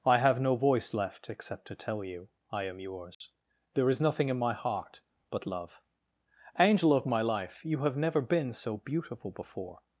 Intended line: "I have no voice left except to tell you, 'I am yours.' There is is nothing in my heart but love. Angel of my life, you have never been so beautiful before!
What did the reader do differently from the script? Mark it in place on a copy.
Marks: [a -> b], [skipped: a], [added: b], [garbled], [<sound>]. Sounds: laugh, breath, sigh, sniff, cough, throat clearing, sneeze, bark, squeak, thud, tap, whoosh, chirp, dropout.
"I have no voice left except to tell you, 'I am yours.' [dropout] There is [skipped: is] nothing in my heart but love. Angel of my life, you have never been so beautiful before!